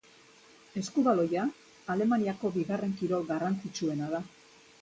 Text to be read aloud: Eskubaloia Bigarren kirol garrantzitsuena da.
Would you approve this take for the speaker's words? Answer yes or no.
no